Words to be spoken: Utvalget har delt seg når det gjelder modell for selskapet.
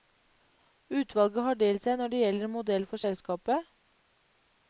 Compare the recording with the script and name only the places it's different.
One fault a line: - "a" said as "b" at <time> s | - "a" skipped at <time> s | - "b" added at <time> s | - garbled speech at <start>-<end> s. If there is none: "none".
none